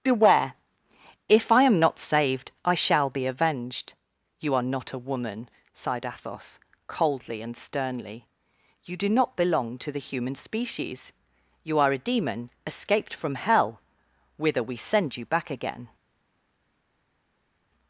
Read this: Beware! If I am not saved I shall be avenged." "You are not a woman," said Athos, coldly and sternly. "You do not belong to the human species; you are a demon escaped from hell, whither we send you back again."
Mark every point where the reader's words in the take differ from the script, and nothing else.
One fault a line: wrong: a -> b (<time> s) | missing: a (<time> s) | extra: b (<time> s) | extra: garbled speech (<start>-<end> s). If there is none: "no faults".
wrong: said -> sighed (5.7 s)